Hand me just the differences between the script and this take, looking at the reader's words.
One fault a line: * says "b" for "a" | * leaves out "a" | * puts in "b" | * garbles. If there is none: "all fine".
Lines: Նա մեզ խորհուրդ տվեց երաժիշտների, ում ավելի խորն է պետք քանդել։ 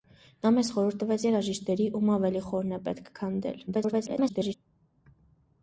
* garbles